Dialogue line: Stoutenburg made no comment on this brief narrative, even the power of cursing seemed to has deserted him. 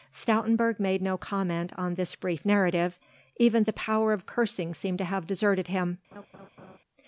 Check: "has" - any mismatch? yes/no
yes